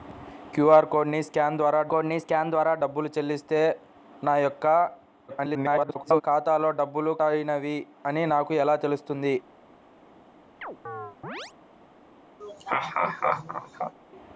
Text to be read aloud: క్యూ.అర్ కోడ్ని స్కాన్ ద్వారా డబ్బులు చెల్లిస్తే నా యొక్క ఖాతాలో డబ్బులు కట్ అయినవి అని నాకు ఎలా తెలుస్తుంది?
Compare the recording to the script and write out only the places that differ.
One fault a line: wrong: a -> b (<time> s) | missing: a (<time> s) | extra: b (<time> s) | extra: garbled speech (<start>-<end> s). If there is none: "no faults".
extra: కోడ్ని స్కాన్ ద్వారా (1.9 s)
extra: garbled speech (5.3-6.2 s)
missing: కట్ (7.1 s)